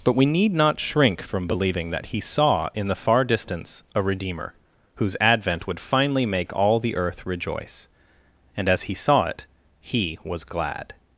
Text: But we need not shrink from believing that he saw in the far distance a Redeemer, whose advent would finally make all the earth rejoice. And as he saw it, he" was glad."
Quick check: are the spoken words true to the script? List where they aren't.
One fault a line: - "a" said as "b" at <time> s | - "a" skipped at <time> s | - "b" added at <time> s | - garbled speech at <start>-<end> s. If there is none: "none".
none